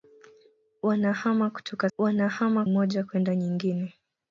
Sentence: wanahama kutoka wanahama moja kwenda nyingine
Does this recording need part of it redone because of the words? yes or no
no